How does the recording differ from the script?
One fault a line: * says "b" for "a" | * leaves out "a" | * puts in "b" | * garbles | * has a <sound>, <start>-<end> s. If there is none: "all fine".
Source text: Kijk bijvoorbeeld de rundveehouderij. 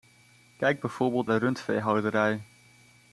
all fine